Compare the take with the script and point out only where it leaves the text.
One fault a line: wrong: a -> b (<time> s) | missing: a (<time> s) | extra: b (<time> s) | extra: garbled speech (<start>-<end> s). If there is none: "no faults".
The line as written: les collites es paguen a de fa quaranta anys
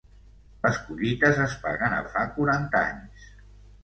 no faults